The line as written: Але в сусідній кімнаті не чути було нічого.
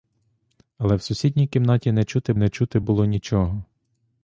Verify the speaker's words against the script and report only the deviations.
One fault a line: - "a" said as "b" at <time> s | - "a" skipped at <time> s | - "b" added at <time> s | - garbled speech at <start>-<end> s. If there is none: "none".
- "не чути" added at 2.4 s